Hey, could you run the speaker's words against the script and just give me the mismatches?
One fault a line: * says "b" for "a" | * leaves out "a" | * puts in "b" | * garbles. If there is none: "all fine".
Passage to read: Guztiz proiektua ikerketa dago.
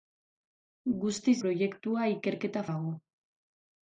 all fine